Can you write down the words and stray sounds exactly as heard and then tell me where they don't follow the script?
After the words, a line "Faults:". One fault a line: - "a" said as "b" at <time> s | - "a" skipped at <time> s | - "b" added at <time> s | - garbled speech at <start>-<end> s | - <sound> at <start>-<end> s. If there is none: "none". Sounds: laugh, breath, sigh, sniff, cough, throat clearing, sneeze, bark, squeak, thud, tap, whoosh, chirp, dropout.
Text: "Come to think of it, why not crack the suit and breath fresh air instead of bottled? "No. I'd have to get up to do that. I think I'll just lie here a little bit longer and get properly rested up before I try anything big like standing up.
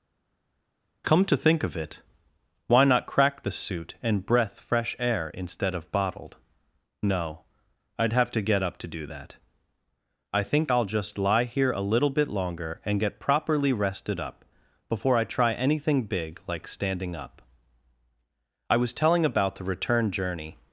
"Come to think of it, why not crack the suit and breath fresh air instead of bottled? "No. I'd have to get up to do that. I think I'll just lie here a little bit longer and get properly rested up before I try anything big like standing up. "I was telling about the return journey
Faults:
- "I was telling about the return journey" added at 18.7 s